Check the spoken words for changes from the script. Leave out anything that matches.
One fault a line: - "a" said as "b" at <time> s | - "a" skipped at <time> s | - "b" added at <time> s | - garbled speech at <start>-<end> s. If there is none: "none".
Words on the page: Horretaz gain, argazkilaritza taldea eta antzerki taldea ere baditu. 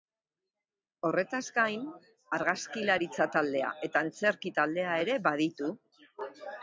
none